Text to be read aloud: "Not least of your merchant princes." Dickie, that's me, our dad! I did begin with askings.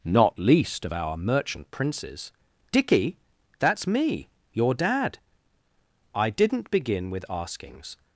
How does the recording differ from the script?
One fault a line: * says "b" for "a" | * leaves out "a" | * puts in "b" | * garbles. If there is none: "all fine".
* says "our" for "your"
* says "your" for "our"
* says "didn't" for "did"